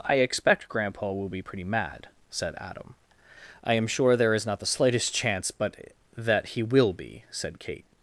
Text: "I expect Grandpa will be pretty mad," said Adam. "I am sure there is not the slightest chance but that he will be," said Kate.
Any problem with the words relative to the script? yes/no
no